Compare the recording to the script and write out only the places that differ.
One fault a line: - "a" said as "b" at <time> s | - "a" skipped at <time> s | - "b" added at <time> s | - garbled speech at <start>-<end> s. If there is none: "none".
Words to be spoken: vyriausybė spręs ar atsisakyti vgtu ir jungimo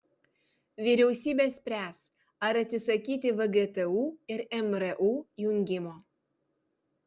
- "mru" added at 4.7 s